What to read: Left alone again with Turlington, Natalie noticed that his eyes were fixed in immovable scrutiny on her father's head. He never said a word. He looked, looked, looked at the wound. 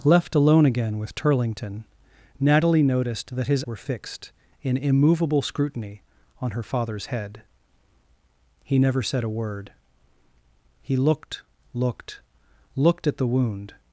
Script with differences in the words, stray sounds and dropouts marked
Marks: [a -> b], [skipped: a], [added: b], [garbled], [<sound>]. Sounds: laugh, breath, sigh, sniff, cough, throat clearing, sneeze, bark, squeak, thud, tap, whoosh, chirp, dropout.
Left alone again with Turlington, Natalie noticed that his [skipped: eyes] were fixed in immovable scrutiny on her father's head. He never said a word. He looked, looked, looked at the wound.